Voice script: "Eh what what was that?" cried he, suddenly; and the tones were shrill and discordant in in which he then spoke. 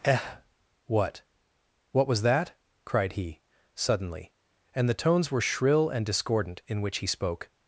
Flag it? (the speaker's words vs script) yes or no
yes